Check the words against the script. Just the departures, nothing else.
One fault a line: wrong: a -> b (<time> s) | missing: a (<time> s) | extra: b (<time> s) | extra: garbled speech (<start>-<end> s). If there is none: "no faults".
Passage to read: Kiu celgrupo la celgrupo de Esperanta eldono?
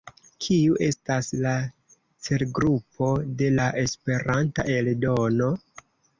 wrong: celgrupo -> estas (0.8 s)
extra: la (3.6 s)